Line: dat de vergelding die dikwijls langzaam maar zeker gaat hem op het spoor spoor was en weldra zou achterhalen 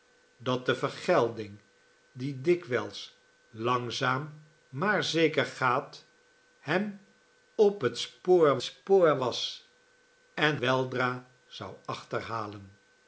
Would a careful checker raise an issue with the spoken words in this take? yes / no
no